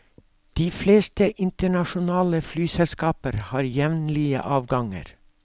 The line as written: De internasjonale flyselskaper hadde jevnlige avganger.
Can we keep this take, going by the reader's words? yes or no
no